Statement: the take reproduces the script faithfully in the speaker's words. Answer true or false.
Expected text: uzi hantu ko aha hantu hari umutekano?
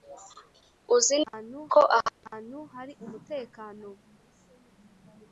true